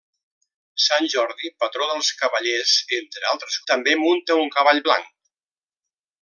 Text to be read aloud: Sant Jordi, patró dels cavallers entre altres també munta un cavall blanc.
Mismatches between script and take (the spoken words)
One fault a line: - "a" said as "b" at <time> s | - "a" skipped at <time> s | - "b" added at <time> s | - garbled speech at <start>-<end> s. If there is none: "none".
none